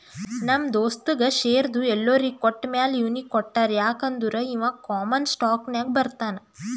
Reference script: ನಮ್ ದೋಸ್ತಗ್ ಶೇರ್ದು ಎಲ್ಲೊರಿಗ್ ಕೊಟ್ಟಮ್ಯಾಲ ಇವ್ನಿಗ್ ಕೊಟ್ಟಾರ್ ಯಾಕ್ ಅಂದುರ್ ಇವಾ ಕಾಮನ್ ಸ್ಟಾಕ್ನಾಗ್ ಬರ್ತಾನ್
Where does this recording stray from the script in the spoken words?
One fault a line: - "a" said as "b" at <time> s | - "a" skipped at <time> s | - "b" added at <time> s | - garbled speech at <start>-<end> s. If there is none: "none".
none